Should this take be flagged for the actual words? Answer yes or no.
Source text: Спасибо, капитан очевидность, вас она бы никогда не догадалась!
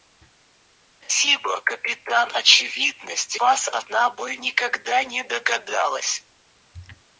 no